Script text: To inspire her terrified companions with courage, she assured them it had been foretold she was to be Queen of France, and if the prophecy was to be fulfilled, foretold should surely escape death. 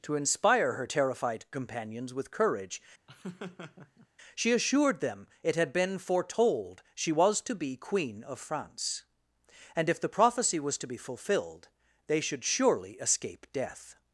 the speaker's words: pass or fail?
fail